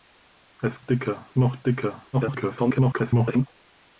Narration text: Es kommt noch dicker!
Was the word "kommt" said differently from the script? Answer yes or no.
yes